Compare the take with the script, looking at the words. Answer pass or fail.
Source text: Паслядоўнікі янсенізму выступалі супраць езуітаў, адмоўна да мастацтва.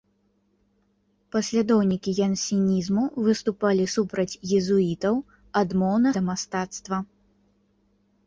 pass